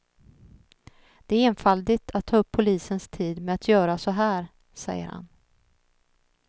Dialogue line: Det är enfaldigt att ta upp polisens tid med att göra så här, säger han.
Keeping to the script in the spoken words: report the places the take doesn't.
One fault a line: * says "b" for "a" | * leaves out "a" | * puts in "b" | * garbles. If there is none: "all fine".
all fine